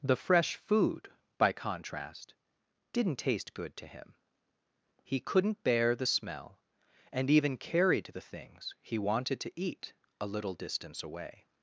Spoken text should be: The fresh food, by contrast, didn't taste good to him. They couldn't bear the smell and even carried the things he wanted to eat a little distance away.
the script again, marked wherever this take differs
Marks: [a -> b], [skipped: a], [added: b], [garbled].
The fresh food, by contrast, didn't taste good to him. [They -> He] couldn't bear the smell and even carried the things he wanted to eat a little distance away.